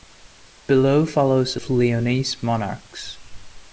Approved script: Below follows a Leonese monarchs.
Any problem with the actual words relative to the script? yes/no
no